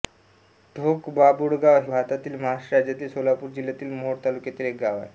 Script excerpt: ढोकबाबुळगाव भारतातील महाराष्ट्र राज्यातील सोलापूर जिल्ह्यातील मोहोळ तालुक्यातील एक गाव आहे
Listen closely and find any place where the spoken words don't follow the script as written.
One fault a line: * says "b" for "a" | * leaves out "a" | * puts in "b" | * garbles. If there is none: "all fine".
all fine